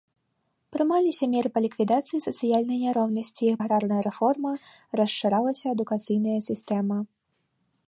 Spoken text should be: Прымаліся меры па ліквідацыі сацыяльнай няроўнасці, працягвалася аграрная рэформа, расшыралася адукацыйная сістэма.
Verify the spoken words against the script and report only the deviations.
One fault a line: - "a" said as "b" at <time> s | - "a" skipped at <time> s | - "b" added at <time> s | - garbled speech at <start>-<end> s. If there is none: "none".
- "працягвалася" skipped at 3.5 s